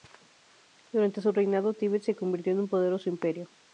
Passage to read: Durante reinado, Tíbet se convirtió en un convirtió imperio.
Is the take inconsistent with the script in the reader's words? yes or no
yes